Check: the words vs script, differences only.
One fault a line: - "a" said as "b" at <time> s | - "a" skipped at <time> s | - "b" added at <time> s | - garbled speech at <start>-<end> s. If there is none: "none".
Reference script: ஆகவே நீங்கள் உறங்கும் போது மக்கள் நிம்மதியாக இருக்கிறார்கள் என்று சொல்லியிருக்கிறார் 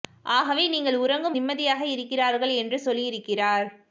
- "போது மக்கள்" skipped at 1.4 s